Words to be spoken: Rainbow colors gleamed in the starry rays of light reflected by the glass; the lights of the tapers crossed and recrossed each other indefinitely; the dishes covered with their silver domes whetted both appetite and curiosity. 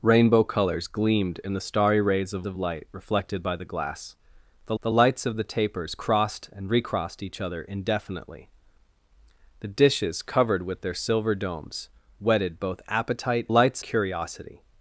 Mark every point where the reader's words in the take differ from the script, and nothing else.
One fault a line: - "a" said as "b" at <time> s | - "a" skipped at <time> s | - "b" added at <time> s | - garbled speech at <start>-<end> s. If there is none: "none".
- "of" added at 2.4 s
- "the" added at 4.8 s
- "and" said as "lights" at 13.5 s